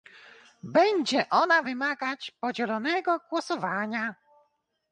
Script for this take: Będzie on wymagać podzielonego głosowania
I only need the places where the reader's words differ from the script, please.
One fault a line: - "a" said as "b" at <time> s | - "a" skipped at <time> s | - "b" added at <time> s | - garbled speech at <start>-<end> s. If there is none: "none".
- "on" said as "ona" at 1.3 s